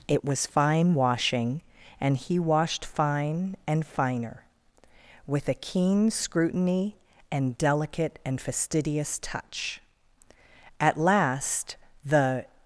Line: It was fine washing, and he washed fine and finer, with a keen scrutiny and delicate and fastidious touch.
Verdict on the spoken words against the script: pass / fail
fail